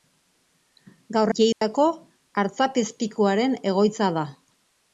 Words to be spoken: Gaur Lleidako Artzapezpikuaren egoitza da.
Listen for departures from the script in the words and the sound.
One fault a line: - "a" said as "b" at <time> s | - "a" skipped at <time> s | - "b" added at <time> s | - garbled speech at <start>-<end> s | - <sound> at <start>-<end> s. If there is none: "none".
- dropout at 1.5-1.6 s